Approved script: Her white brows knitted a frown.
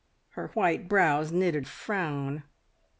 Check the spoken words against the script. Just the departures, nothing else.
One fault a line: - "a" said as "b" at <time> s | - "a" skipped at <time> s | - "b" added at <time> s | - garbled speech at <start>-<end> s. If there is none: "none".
none